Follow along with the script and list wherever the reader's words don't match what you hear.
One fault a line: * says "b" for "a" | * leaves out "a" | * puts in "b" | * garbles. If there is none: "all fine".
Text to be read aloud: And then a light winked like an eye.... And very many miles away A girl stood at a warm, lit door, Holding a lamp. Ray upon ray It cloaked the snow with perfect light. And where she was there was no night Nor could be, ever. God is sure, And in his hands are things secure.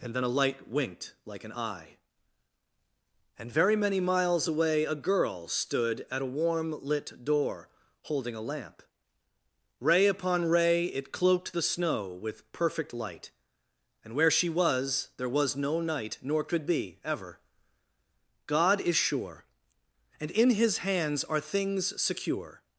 all fine